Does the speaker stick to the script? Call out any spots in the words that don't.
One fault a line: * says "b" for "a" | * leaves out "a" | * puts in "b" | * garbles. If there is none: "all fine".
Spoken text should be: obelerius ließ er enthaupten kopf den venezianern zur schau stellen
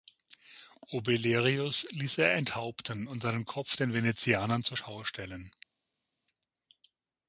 * puts in "und seinen"